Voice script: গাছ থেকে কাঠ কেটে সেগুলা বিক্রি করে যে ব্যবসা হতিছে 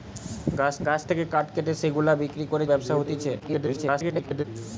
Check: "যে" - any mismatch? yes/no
yes